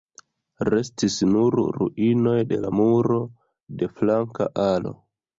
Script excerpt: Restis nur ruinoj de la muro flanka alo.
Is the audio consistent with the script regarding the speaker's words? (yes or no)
no